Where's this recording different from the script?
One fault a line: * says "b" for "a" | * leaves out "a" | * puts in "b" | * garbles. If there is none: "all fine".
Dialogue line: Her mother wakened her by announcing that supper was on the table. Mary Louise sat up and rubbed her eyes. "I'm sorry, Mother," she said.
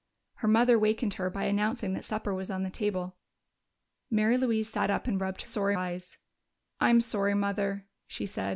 * says "sorry" for "her"